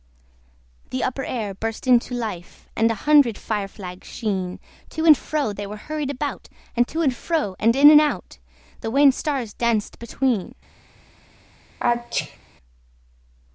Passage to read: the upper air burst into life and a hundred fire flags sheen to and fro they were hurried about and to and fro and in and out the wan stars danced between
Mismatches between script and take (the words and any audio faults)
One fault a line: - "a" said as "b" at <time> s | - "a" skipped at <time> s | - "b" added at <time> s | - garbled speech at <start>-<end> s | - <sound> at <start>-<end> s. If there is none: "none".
- sneeze at 11.8-12.4 s